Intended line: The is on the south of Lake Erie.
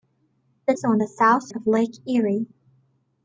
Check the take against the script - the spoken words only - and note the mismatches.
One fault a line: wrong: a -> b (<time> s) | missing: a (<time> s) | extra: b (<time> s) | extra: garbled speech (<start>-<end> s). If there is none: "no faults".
no faults